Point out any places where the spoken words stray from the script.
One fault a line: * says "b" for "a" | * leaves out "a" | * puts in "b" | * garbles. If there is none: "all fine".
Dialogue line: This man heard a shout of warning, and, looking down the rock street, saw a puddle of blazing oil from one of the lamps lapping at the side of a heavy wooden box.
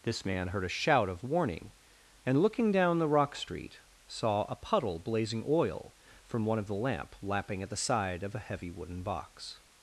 * leaves out "of"
* says "lamp" for "lamps"